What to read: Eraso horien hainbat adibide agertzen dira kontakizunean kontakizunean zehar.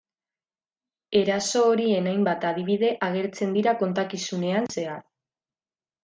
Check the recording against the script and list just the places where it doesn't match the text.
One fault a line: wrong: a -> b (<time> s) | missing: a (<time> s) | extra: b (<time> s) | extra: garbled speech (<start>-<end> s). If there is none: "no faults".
missing: kontakizunean (4.7 s)